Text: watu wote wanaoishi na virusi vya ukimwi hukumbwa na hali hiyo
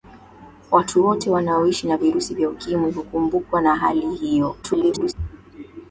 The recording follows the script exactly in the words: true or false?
false